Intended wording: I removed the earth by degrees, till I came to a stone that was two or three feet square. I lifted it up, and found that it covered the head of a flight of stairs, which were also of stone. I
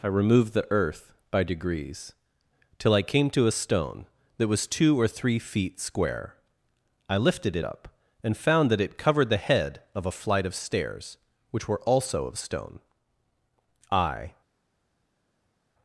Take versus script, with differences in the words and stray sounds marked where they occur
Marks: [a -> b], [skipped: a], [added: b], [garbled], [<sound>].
I removed the earth by degrees, till I came to a stone that was two or three feet square. I lifted it up, and found that it covered the head of a flight of stairs, which were also of stone. I